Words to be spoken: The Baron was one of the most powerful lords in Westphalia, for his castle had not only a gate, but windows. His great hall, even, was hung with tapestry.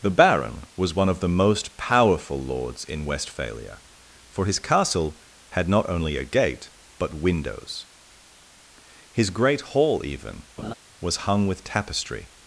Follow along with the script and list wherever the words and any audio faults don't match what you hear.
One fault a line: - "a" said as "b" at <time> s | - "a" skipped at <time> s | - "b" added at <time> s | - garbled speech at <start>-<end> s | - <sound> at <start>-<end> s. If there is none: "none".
- laugh at 10.6-10.7 s